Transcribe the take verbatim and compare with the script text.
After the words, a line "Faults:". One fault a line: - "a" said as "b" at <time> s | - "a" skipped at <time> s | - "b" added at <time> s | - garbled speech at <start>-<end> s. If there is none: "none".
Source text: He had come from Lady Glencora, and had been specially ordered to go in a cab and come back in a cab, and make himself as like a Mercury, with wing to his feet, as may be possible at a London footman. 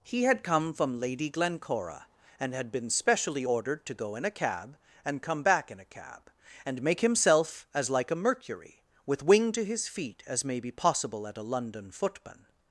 He had come from Lady Glencora, and had been specially ordered to go in a cab and come back in a cab, and make himself as like a Mercury, with wing to his feet, as may be possible at a London footman.
Faults:
none